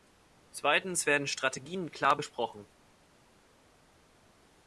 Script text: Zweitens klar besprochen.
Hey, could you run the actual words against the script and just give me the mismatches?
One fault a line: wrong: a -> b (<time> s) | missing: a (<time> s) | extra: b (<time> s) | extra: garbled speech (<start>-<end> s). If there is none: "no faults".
extra: werden Strategien (1.1 s)